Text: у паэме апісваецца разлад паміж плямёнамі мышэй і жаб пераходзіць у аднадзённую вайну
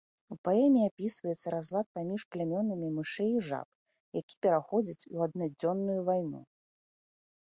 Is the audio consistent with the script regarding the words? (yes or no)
no